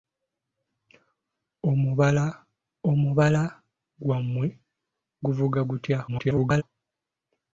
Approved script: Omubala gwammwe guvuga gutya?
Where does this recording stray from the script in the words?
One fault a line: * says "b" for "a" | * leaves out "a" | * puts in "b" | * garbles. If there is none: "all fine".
* puts in "omubala"
* garbles